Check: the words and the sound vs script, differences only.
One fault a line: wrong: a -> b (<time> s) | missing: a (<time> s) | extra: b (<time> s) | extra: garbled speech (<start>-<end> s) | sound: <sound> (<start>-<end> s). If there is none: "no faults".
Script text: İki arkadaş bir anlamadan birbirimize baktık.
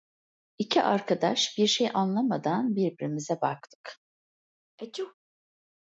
extra: şey (1.7 s)
sound: sneeze (4.8-5.1 s)